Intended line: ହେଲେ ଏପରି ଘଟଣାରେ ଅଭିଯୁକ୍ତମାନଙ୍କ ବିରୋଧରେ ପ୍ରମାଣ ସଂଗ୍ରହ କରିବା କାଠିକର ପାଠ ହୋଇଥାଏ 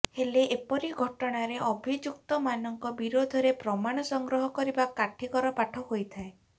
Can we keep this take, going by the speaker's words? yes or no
yes